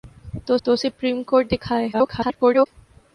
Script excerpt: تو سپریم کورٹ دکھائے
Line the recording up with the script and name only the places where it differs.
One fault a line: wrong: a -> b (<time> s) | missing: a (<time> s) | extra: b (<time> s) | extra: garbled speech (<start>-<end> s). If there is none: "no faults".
extra: تو (0.6 s)
extra: garbled speech (1.9-2.7 s)